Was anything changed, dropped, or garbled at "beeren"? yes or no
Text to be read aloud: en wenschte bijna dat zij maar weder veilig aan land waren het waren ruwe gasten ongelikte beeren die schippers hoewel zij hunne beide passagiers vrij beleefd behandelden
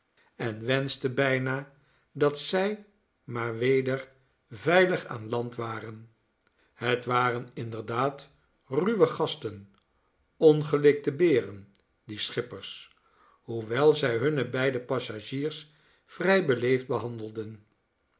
no